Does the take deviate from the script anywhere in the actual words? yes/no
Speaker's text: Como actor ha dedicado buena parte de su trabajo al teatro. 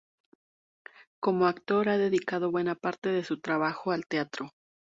no